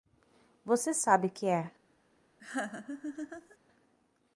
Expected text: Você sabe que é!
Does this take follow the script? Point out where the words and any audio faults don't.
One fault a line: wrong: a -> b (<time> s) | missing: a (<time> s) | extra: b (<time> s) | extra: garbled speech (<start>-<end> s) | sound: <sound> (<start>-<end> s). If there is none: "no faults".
sound: laugh (2.4-3.6 s)